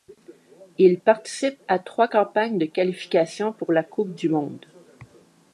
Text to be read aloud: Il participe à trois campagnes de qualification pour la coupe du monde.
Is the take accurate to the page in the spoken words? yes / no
yes